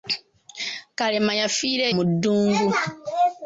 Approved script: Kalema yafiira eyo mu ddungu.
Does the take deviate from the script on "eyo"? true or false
true